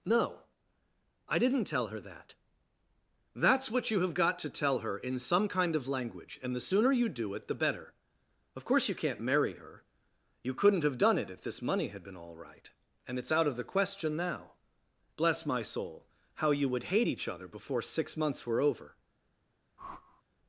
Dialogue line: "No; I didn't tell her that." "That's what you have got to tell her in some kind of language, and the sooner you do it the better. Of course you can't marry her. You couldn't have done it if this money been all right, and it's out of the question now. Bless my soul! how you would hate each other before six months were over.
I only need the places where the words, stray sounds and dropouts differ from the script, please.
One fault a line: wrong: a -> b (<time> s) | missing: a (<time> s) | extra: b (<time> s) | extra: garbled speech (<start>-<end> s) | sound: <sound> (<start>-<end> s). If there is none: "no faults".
extra: had (11.9 s)
sound: whoosh (19.8-20.2 s)